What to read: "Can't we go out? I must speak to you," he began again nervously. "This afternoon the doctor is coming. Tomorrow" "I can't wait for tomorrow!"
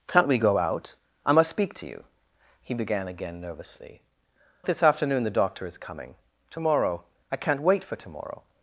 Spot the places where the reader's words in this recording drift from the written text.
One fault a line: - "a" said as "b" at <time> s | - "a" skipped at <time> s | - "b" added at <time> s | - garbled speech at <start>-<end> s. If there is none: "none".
none